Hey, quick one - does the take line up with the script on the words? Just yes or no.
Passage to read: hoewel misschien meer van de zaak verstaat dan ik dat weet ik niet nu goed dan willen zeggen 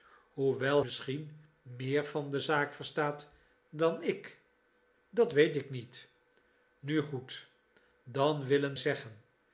yes